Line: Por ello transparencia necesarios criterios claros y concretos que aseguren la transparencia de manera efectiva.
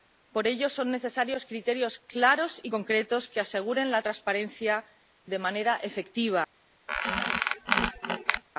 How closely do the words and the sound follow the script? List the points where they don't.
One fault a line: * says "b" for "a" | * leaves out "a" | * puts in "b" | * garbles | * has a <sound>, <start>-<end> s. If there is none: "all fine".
* says "son" for "transparencia"
* has a squeak, 6.9-8.4 s